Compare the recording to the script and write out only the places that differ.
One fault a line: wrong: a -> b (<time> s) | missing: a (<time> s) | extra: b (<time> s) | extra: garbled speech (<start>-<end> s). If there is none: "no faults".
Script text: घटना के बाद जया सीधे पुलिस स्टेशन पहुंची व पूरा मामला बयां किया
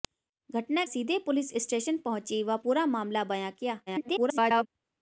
missing: के बाद जया (0.8 s)
extra: garbled speech (3.9-4.7 s)